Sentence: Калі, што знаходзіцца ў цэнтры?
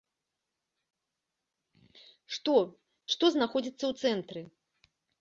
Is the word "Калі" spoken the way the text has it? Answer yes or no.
no